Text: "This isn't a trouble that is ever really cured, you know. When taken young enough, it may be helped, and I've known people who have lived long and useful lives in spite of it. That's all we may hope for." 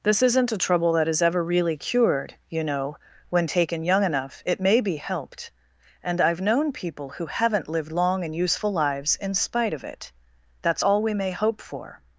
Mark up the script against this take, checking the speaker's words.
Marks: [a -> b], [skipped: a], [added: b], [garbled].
"This isn't a trouble that is ever really cured, you know. When taken young enough, it may be helped, and I've known people who [have -> haven't] lived long and useful lives in spite of it. That's all we may hope for."